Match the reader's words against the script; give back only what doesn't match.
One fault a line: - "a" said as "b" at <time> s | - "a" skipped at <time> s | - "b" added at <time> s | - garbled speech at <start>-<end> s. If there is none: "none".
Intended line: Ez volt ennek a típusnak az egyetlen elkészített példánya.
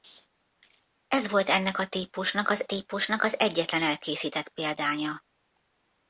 - "típusnak az" added at 2.6 s